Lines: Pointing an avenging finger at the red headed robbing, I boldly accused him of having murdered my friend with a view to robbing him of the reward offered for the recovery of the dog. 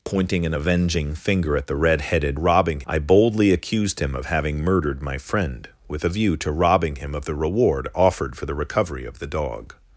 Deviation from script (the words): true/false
false